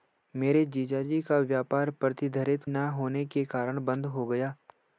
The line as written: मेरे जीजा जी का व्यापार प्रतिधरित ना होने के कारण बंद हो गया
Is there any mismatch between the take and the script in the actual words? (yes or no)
no